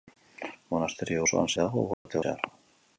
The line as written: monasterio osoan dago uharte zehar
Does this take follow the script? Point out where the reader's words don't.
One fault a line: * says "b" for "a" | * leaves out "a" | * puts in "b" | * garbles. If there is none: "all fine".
all fine